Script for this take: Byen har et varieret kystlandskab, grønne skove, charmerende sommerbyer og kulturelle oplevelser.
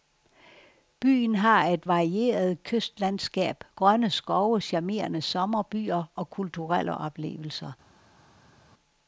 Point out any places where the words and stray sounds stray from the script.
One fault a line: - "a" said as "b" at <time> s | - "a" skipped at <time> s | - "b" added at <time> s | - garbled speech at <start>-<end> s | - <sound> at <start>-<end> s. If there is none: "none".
none